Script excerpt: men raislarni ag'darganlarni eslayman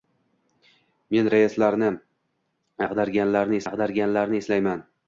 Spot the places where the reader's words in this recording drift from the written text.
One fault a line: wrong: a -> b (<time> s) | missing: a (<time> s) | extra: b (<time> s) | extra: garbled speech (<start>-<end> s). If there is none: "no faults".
extra: ag'darganlarni (3.7 s)